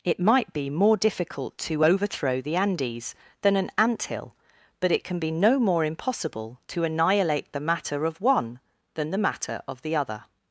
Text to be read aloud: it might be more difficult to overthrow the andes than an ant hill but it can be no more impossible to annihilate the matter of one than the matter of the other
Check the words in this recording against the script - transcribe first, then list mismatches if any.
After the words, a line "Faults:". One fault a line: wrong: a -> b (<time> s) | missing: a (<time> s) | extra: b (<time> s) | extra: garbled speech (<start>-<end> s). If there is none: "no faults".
it might be more difficult to overthrow the andes than an ant hill but it can be no more impossible to annihilate the matter of one than the matter of the other
Faults:
no faults